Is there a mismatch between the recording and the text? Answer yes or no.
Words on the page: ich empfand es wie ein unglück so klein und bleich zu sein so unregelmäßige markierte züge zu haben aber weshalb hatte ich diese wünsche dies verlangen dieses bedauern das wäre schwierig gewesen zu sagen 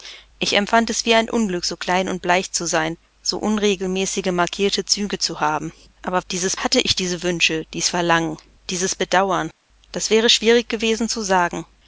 yes